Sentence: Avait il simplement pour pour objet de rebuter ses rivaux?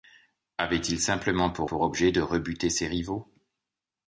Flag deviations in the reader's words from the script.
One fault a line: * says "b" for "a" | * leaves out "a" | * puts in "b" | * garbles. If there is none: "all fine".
all fine